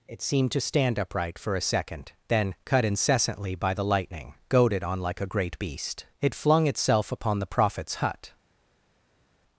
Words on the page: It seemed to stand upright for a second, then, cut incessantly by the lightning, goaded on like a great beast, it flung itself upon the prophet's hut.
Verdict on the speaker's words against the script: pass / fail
pass